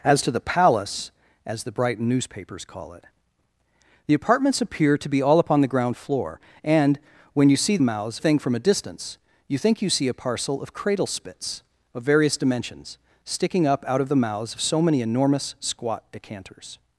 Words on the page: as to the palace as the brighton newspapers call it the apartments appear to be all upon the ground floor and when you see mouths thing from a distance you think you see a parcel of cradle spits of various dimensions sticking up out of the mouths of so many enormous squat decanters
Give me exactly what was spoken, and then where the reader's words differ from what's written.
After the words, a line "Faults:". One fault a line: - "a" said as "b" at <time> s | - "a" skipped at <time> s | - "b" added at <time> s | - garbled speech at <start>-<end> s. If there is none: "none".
as to the palace as the brighton newspapers call it the apartments appear to be all upon the ground floor and when you see mouths thing from a distance you think you see a parcel of cradle spits of various dimensions sticking up out of the mouths of so many enormous squat decanters
Faults:
none